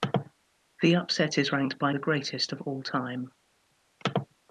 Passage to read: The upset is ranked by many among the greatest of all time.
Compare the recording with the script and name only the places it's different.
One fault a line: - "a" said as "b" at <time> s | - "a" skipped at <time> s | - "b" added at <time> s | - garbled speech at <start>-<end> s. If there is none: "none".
- "many among" skipped at 1.9 s